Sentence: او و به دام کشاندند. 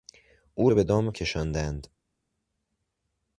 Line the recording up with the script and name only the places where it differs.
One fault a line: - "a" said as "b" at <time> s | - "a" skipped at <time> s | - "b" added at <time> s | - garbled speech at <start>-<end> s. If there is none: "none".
none